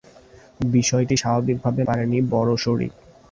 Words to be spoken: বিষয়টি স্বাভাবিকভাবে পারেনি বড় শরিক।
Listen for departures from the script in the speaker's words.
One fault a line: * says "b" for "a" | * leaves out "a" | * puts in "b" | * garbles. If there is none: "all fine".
all fine